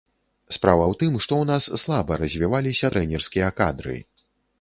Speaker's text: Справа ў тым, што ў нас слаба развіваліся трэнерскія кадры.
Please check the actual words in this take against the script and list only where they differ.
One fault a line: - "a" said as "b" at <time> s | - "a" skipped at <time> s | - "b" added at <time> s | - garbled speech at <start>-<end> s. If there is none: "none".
none